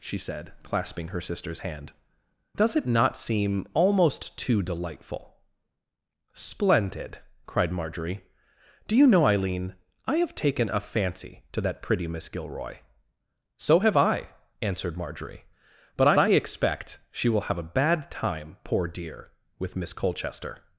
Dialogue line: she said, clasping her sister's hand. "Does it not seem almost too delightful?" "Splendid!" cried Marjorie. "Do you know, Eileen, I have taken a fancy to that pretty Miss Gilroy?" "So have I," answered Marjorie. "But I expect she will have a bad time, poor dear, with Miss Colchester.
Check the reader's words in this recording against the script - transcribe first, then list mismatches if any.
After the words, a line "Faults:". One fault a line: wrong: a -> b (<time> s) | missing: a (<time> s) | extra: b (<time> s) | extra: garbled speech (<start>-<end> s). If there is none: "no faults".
she said, clasping her sister's hand. "Does it not seem almost too delightful?" "Splendid!" cried Marjorie. "Do you know, Eileen, I have taken a fancy to that pretty Miss Gilroy?" "So have I," answered Marjorie. "But I I expect she will have a bad time, poor dear, with Miss Colchester.
Faults:
extra: I (16.2 s)